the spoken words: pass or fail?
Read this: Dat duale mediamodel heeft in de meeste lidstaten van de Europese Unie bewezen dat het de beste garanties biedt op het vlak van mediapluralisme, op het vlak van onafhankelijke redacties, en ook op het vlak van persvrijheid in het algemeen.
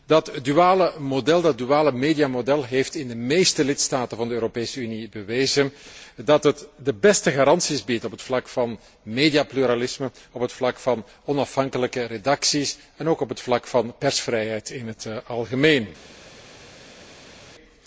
pass